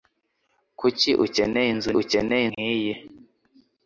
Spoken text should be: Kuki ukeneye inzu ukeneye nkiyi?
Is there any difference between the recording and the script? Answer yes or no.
no